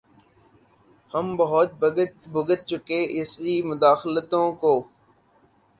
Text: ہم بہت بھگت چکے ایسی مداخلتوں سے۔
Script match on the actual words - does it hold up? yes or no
no